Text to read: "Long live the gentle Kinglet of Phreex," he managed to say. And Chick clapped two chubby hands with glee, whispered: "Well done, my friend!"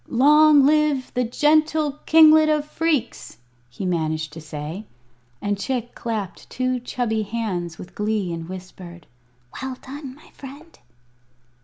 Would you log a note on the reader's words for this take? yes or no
yes